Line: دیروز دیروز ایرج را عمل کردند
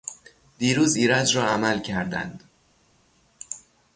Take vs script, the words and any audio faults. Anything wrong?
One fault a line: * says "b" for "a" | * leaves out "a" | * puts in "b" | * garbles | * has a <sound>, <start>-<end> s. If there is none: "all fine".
* leaves out "دیروز"